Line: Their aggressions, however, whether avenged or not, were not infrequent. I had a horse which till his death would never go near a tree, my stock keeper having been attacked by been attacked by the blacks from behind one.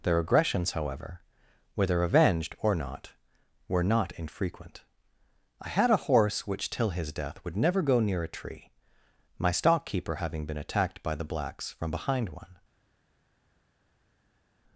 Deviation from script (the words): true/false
true